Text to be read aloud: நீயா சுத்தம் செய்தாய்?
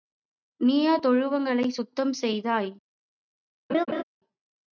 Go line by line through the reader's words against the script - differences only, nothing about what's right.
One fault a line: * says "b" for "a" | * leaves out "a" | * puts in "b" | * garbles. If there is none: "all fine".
* puts in "தொழுவங்களைச்"